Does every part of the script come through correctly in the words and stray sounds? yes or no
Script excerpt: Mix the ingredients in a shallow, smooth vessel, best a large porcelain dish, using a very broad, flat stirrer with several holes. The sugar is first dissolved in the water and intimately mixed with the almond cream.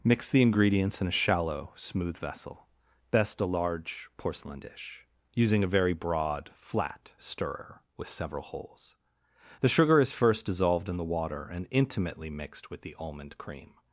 yes